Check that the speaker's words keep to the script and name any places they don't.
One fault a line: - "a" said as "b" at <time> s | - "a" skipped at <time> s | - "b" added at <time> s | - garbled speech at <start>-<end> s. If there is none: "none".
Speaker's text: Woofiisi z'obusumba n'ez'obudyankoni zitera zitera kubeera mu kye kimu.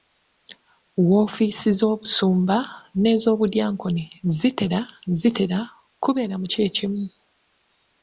none